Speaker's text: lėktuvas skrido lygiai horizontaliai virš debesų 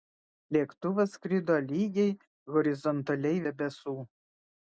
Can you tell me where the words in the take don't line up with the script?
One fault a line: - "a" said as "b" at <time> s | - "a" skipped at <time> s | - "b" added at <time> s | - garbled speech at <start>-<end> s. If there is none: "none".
- "virš" skipped at 3.5 s